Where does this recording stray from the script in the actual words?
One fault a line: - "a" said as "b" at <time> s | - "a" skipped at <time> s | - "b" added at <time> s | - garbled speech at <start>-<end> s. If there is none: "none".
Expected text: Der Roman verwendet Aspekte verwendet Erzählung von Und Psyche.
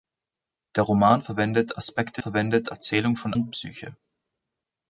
none